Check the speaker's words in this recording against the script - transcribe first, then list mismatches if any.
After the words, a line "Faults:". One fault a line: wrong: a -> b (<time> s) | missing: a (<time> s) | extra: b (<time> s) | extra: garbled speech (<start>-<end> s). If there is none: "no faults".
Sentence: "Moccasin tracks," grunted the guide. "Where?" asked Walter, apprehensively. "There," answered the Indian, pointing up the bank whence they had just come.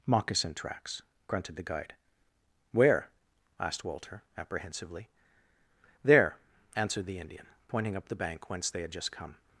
"Moccasin tracks," grunted the guide. "Where?" asked Walter, apprehensively. "There," answered the Indian, pointing up the bank whence they had just come.
Faults:
no faults